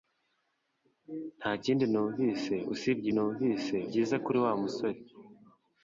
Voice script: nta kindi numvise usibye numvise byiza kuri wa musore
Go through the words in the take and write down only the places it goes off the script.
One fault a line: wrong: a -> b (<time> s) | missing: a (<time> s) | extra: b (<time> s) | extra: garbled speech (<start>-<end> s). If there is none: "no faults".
no faults